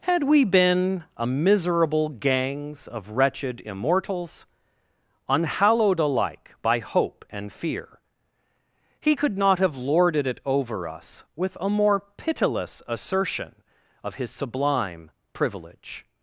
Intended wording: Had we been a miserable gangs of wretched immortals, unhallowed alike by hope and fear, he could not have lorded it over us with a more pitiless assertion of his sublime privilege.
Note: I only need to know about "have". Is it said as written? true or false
true